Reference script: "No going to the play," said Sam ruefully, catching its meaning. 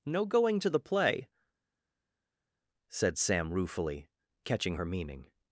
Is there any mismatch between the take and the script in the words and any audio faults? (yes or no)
yes